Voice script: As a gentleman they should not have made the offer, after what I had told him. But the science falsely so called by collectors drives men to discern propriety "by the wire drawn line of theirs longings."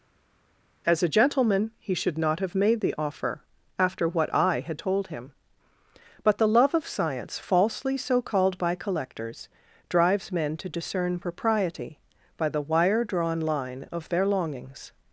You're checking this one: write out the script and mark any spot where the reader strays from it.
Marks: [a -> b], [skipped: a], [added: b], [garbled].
As a gentleman [they -> he] should not have made the offer, after what I had told him. But the [added: love of] science falsely so called by collectors drives men to discern propriety "by the wire drawn line of [theirs -> their] longings."